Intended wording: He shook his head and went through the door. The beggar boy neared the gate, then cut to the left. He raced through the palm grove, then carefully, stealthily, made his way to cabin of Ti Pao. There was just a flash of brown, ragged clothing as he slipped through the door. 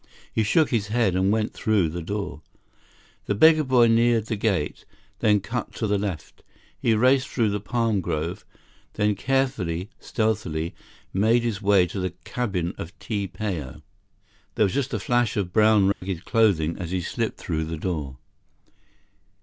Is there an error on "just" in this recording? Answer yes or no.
no